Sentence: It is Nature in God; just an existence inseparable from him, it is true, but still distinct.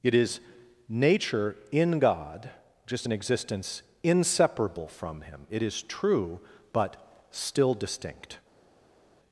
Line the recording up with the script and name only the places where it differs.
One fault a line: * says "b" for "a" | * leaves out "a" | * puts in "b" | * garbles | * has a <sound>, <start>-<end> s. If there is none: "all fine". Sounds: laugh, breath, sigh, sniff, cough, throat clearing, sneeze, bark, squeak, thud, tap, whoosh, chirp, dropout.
all fine